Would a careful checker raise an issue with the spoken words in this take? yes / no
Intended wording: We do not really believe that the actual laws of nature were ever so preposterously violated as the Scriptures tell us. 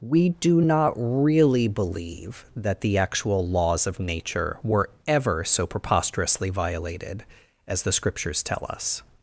no